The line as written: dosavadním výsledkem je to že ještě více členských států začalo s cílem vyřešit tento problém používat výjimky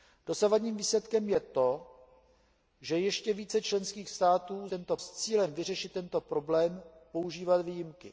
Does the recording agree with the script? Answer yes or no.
no